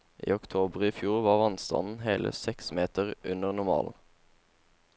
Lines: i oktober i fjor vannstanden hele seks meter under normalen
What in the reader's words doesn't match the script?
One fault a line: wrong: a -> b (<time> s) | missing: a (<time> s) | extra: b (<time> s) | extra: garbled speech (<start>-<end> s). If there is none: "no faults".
extra: var (1.2 s)